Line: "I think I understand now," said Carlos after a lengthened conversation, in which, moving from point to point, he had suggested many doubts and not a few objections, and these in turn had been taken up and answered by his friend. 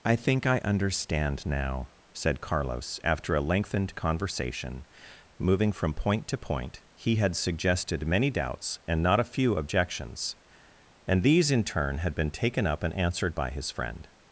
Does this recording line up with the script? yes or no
no